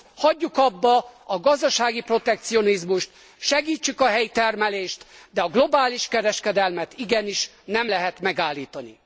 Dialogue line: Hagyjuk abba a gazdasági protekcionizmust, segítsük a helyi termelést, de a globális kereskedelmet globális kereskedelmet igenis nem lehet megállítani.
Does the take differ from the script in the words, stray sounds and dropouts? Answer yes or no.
yes